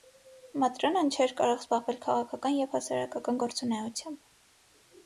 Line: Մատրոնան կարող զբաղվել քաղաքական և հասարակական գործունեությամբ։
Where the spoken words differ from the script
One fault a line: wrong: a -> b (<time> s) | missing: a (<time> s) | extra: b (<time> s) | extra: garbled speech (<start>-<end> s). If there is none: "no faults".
extra: չէր (1.2 s)